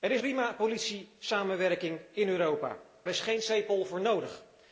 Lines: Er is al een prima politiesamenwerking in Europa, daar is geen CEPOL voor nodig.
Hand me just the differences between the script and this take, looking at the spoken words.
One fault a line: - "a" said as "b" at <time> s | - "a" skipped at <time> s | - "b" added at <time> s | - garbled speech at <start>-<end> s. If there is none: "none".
- "al een" skipped at 0.2 s
- "daar" skipped at 2.8 s